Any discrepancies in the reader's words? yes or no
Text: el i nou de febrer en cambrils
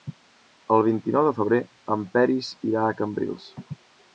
yes